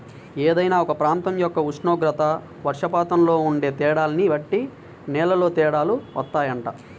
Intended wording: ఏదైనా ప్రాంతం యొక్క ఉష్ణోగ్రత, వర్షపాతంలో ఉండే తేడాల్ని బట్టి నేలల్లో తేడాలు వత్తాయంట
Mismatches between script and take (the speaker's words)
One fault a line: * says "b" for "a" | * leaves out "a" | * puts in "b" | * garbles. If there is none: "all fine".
* puts in "ఒక"